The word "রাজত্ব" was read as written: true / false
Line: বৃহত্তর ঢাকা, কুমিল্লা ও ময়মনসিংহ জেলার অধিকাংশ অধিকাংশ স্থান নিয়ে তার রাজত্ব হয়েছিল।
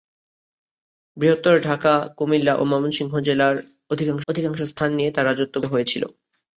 true